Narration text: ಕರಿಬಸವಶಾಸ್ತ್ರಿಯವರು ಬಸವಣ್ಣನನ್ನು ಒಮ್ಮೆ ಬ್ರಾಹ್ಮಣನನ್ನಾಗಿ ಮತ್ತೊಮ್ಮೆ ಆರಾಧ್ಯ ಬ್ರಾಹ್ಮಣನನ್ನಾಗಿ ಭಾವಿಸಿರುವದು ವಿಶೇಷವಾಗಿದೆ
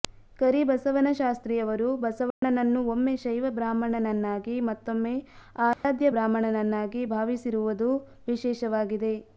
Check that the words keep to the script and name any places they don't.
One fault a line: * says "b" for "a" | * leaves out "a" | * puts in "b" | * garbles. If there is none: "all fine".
* puts in "ಶೈವ"